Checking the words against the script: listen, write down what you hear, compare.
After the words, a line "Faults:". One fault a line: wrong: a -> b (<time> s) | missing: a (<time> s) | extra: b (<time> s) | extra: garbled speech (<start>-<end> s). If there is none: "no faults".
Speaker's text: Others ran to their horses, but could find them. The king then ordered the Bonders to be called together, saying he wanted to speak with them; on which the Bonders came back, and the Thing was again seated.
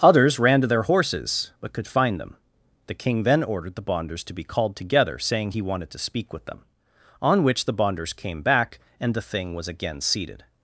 Others ran to their horses, but could find them. The king then ordered the Bonders to be called together, saying he wanted to speak with them; on which the Bonders came back, and the Thing was again seated.
Faults:
no faults